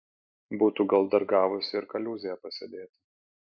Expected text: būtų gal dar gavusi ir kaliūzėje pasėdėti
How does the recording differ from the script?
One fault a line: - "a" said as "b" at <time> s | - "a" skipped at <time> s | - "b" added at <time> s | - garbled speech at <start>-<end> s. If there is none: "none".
none